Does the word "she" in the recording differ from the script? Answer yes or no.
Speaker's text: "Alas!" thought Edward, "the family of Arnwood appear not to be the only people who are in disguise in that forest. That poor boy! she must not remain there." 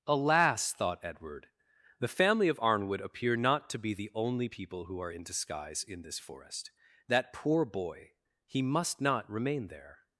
yes